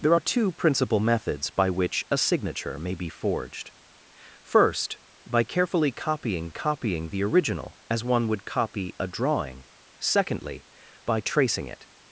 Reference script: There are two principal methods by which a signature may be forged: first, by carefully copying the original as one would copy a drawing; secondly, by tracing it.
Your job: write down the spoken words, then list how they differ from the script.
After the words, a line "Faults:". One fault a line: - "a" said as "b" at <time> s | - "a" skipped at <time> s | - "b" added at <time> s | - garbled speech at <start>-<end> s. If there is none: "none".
There are two principal methods by which a signature may be forged: first, by carefully copying copying the original as one would copy a drawing; secondly, by tracing it.
Faults:
- "copying" added at 6.5 s